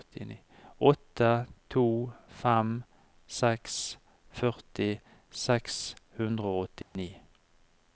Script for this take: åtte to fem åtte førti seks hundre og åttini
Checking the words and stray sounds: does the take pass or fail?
fail